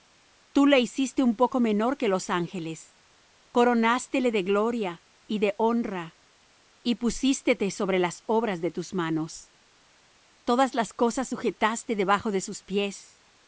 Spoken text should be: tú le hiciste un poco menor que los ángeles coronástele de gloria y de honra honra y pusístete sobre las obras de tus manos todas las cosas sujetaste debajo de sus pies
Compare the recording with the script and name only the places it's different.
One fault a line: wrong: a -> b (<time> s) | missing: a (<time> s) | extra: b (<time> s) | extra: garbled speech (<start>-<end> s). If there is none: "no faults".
missing: honra (6.2 s)